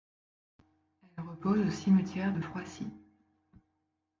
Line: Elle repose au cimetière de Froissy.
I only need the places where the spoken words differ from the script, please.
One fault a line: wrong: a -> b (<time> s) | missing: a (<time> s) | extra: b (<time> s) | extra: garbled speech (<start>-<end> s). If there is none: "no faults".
no faults